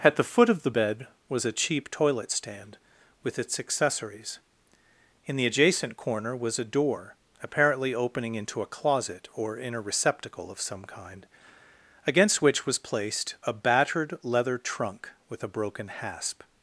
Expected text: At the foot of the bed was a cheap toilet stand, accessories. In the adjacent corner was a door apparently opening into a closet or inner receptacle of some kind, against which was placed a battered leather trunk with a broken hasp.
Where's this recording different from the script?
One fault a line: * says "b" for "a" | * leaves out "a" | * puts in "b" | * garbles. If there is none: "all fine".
* puts in "with its"